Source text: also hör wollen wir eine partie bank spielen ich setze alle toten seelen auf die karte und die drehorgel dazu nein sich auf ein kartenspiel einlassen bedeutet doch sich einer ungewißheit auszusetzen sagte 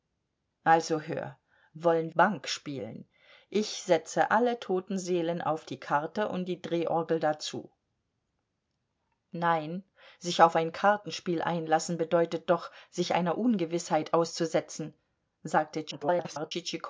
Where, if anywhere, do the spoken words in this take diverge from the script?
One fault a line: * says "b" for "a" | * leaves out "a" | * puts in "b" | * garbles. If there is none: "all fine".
* leaves out "wir eine partie"
* garbles